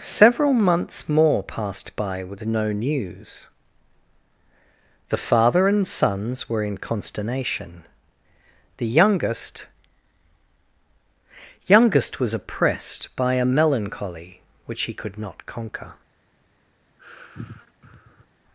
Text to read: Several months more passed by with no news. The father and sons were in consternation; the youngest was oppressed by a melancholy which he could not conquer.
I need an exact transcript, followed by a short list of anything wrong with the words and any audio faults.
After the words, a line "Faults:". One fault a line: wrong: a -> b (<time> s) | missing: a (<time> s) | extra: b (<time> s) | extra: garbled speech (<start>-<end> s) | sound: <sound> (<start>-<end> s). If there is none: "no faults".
Several months more passed by with no news. The father and sons were in consternation; the youngest youngest was oppressed by a melancholy which he could not conquer.
Faults:
extra: youngest (11.7 s)
sound: sigh (17.0-18.3 s)